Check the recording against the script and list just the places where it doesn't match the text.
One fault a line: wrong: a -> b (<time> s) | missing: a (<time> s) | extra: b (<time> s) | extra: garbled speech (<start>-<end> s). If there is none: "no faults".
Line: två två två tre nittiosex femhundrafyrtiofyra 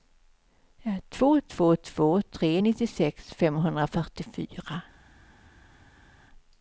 no faults